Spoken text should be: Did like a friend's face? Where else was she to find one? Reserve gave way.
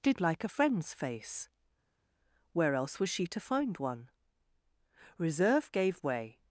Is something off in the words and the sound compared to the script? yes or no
no